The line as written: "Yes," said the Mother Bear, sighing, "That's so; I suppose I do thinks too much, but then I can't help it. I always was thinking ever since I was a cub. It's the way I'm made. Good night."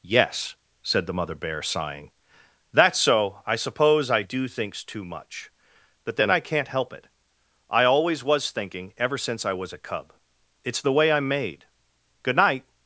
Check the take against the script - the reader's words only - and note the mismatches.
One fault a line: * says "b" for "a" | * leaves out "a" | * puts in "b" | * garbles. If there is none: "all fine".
all fine